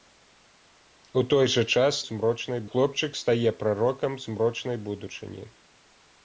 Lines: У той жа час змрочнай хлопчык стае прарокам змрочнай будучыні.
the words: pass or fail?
pass